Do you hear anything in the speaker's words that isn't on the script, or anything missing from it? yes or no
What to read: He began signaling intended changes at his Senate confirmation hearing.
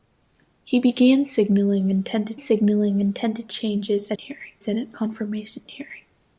yes